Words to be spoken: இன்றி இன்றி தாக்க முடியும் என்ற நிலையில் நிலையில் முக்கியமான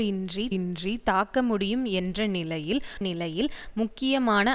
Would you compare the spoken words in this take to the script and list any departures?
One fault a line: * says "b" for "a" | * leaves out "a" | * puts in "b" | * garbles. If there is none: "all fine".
all fine